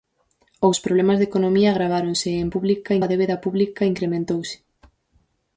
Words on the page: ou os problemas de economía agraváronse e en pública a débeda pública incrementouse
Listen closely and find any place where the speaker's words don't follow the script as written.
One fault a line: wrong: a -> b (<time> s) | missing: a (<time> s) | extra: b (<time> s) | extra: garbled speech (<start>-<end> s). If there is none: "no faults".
no faults